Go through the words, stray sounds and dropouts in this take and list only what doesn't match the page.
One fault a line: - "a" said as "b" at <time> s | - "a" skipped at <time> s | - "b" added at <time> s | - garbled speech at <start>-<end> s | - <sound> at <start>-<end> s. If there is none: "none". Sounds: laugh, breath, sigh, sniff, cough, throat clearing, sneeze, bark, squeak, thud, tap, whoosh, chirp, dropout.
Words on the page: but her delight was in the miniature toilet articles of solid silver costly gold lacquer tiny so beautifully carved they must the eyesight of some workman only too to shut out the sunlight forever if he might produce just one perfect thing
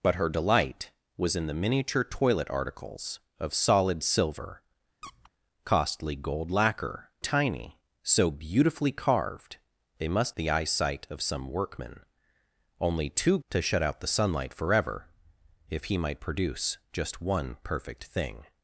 - squeak at 5.0-5.3 s